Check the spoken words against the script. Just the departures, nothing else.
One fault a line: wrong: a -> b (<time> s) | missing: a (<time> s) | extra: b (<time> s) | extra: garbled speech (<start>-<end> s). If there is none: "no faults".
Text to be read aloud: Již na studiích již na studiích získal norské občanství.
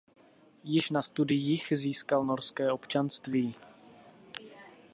missing: již na studiích (1.7 s)